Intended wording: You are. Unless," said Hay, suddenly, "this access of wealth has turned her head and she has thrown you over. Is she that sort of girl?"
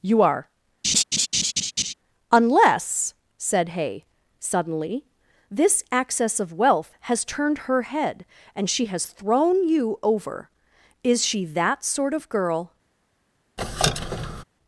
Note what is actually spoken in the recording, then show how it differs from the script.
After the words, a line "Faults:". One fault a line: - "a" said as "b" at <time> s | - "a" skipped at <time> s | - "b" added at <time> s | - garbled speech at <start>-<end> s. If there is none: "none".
You are. Unless," said Hay, suddenly, "this access of wealth has turned her head and she has thrown you over. Is she that sort of girl?"
Faults:
none